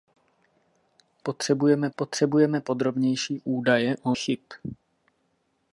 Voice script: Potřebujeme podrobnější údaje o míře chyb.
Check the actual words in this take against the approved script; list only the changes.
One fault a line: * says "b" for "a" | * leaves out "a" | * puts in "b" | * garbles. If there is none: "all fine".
* puts in "potřebujeme"
* leaves out "míře"